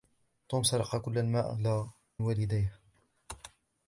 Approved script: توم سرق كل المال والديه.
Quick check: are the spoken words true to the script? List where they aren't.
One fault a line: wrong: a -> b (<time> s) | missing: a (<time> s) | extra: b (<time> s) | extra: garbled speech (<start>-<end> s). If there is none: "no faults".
no faults